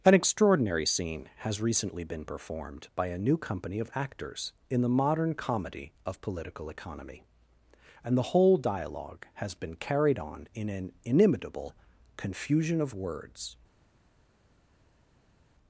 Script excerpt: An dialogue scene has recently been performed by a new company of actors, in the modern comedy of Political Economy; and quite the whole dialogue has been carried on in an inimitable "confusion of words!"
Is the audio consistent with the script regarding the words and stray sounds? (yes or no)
no